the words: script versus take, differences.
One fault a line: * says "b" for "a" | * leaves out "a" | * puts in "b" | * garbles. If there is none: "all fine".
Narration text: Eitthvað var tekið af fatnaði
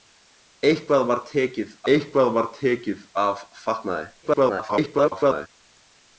* puts in "eitthvað var tekið"
* garbles